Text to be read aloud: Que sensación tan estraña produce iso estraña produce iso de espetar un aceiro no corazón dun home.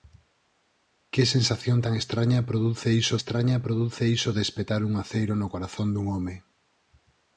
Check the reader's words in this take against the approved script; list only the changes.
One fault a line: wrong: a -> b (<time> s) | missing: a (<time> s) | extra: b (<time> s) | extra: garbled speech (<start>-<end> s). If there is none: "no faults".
no faults